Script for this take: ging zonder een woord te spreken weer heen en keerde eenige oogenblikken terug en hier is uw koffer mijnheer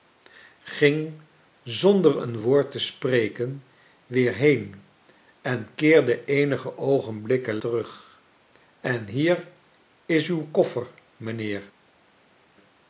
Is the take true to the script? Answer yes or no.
yes